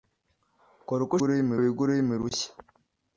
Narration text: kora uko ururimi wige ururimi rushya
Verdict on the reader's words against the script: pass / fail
pass